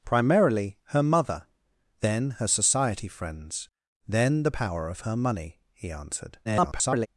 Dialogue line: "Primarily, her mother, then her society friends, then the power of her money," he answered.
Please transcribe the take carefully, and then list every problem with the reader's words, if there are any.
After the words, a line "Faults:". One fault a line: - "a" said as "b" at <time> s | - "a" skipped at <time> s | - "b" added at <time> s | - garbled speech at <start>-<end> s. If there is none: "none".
"Primarily, her mother, then her society friends, then the power of her money," he answered. [garbled]
Faults:
- garbled speech at 6.4-7.1 s